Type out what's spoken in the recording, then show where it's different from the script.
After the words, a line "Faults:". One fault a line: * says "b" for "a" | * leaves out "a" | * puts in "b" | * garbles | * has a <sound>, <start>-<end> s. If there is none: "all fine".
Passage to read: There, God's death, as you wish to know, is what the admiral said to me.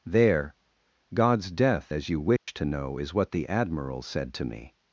There, God's death, as you wish to know, is what the admiral said to me.
Faults:
* has a dropout, 2.4-2.5 s